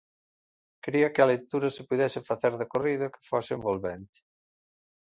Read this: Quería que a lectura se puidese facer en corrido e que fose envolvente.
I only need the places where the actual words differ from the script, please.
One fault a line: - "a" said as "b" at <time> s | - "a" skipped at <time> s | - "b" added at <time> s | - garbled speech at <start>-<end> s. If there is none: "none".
- "en" said as "de" at 2.6 s